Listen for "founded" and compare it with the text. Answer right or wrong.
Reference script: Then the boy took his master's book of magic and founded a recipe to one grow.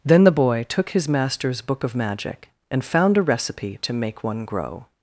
wrong